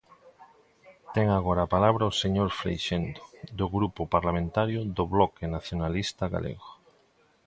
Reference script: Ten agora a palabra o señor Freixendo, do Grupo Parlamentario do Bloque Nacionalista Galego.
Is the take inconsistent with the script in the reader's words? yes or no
no